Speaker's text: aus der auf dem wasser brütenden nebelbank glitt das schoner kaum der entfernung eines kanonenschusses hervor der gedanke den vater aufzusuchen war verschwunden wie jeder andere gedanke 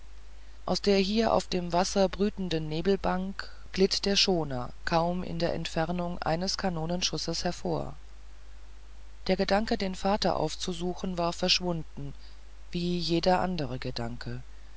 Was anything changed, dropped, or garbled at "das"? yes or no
yes